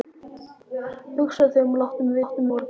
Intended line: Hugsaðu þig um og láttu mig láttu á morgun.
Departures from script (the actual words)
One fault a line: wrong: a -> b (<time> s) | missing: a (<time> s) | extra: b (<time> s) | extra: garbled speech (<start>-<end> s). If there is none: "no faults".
no faults